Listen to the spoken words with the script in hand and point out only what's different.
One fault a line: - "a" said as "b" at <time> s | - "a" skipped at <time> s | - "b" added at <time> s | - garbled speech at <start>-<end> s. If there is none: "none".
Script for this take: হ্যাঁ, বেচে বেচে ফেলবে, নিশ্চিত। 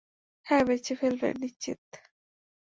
- "বেচে" skipped at 0.9 s